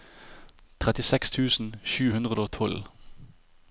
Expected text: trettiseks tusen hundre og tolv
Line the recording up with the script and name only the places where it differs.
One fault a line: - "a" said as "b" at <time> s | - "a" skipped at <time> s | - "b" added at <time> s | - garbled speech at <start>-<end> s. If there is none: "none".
- "sju" added at 1.9 s